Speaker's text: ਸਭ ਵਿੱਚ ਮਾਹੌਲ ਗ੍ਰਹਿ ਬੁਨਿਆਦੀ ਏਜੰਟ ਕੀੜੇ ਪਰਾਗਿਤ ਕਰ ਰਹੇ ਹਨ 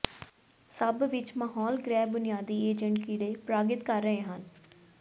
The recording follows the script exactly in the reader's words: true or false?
true